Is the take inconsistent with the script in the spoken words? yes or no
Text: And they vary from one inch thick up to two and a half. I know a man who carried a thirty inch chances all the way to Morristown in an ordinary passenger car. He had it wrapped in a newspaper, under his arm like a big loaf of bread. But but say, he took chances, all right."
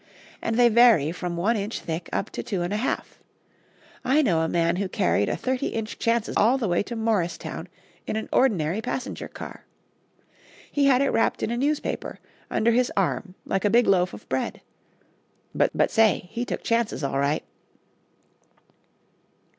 no